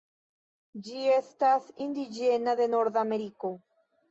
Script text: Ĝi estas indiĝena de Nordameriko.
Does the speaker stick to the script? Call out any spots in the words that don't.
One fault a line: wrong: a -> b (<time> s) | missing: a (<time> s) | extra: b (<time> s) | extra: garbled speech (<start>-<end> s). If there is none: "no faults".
no faults